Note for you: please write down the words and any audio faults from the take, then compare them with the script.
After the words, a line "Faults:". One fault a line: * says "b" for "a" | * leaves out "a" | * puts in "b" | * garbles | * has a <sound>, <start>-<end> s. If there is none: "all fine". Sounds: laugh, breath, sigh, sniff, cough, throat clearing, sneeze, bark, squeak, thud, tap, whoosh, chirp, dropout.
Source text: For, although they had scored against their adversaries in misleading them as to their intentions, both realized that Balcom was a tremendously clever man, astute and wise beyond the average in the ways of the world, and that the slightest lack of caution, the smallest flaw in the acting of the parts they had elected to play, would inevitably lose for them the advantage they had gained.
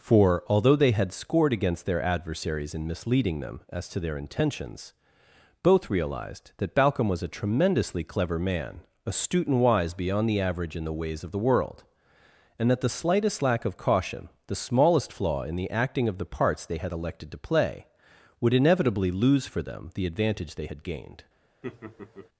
For, although they had scored against their adversaries in misleading them as to their intentions, both realized that Balcom was a tremendously clever man, astute and wise beyond the average in the ways of the world, and that the slightest lack of caution, the smallest flaw in the acting of the parts they had elected to play, would inevitably lose for them the advantage they had gained.
Faults:
* has a laugh, 21.6-22.3 s